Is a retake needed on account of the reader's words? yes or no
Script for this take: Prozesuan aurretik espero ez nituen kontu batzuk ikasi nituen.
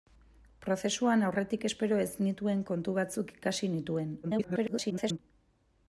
yes